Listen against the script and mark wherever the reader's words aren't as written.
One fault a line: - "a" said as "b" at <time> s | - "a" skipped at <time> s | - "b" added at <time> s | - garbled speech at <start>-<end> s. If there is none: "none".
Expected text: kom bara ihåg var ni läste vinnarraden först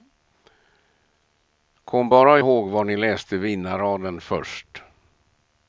none